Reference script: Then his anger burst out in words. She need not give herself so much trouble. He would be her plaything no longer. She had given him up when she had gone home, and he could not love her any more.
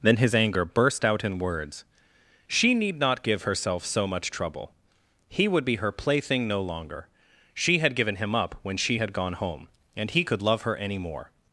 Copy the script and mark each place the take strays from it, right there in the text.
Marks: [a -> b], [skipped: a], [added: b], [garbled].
Then his anger burst out in words. She need not give herself so much trouble. He would be her plaything no longer. She had given him up when she had gone home, and he could [skipped: not] love her any more.